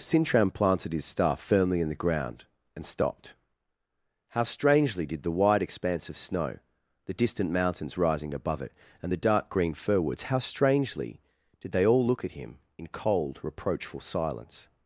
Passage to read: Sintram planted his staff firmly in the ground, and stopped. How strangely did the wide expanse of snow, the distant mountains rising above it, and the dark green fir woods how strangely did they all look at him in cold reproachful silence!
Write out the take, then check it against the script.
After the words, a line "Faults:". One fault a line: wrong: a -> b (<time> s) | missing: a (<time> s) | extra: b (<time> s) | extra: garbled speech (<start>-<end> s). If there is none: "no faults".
Sintram planted his staff firmly in the ground, and stopped. How strangely did the wide expanse of snow, the distant mountains rising above it, and the dark green fir woods how strangely did they all look at him in cold reproachful silence!
Faults:
no faults